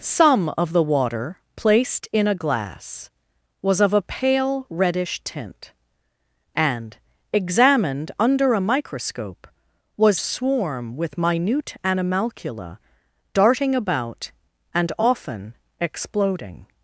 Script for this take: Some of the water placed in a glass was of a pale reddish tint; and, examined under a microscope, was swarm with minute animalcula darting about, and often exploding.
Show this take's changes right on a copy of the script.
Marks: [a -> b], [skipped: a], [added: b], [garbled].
Some of the water placed in a glass was of a pale reddish tint; and, examined under a microscope, was swarm with minute animalcula darting about, and often exploding.